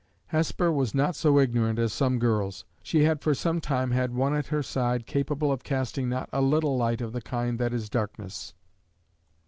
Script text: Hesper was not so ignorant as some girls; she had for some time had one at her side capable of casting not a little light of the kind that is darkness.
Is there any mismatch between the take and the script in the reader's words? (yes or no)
no